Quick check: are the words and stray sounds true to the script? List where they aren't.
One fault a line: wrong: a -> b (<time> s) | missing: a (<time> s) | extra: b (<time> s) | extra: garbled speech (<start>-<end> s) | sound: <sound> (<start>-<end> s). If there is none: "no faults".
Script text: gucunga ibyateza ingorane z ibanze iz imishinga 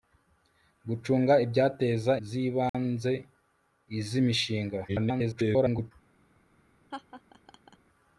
missing: ingorane (2.1 s)
sound: dropout (2.7-2.7 s)
extra: garbled speech (4.9-5.9 s)
sound: laugh (6.9-7.8 s)